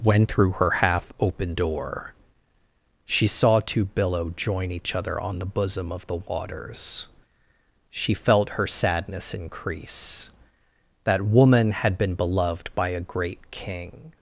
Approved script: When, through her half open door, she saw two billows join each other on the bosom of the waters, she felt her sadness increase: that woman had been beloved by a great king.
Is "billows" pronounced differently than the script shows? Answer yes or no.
yes